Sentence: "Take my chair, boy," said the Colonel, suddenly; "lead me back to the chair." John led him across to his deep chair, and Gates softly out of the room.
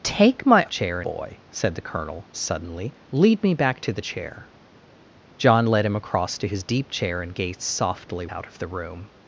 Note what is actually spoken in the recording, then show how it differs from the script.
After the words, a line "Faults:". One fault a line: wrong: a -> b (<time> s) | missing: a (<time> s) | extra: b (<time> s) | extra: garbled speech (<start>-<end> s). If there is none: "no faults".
"Take my chair, boy," said the Colonel, suddenly; "lead me back to the chair." John led him across to his deep chair, and Gates softly out of the room.
Faults:
no faults